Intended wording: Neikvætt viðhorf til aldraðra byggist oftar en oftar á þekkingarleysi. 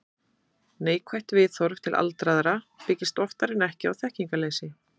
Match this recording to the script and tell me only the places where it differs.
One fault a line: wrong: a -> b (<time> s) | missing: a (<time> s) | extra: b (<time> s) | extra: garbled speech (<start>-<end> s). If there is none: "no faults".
wrong: oftar -> ekki (3.7 s)